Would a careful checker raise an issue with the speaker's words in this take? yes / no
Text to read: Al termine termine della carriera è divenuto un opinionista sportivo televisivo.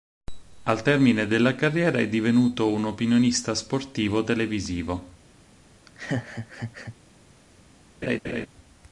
yes